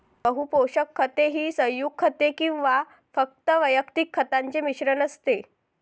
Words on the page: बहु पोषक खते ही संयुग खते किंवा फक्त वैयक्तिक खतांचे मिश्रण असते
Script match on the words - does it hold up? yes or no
yes